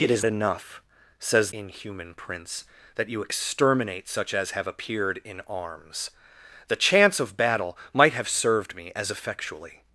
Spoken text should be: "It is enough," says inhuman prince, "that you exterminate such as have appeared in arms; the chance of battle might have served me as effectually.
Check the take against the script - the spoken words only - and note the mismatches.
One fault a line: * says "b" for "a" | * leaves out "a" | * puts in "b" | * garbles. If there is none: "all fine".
all fine